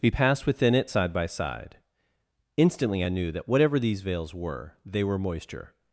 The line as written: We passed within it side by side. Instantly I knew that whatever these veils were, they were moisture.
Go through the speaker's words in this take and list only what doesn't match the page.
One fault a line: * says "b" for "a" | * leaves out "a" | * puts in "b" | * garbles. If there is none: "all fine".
all fine